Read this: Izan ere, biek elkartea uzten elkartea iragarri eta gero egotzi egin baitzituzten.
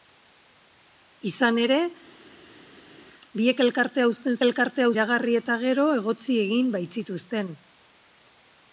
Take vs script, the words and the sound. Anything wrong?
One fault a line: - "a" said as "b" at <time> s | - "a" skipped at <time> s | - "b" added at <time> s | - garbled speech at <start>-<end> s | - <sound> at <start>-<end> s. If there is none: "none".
none